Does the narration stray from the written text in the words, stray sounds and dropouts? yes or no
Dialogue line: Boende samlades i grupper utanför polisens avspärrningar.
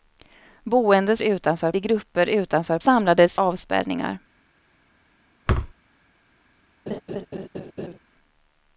yes